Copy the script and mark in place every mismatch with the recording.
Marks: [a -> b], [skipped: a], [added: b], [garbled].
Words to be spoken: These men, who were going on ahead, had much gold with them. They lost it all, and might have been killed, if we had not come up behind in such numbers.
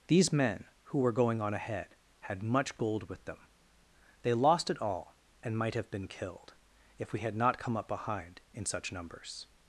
These men, who were going on ahead, had much gold with them. They lost it all, and might have been killed, if we had not come up behind in such numbers.